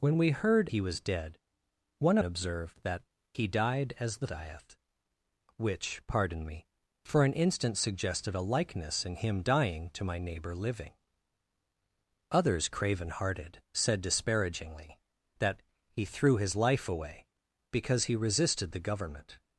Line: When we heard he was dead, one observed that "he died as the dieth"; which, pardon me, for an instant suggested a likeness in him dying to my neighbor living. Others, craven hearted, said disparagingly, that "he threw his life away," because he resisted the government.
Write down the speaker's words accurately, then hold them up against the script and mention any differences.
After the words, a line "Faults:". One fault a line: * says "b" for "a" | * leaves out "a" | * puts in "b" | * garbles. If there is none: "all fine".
When we heard he was dead, one observed that "he died as the dieth"; which, pardon me, for an instant suggested a likeness in him dying to my neighbor living. Others, craven hearted, said disparagingly, that "he threw his life away," because he resisted the government.
Faults:
all fine